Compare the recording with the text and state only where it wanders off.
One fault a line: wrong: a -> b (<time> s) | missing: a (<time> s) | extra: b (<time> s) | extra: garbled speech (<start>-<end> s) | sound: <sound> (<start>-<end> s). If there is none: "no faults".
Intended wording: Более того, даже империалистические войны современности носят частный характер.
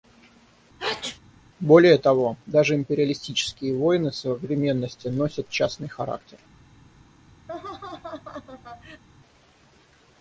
sound: sneeze (0.8-1.2 s)
sound: laugh (7.5-9.0 s)